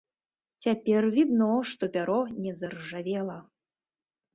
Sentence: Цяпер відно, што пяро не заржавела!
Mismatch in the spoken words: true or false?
false